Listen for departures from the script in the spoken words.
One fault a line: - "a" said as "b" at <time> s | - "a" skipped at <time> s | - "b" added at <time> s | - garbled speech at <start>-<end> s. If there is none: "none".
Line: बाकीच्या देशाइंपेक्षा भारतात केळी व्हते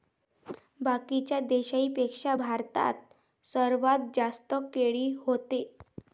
- "सर्वात जास्त" added at 3.4 s